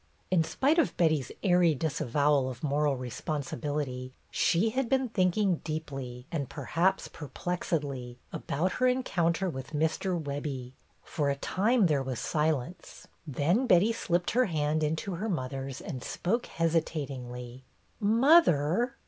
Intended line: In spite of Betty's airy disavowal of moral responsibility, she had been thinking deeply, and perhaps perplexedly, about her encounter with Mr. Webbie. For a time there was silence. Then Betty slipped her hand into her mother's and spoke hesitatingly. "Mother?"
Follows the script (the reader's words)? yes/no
yes